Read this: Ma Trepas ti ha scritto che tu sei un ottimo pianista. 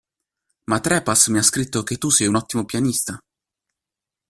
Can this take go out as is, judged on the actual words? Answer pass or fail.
fail